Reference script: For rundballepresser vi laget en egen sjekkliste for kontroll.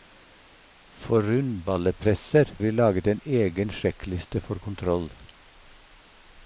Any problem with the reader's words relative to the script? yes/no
no